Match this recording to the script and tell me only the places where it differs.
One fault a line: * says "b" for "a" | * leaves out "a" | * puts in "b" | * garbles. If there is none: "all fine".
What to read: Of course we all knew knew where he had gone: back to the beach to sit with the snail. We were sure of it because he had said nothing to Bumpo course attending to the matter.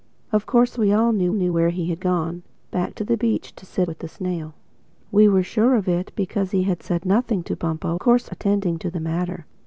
all fine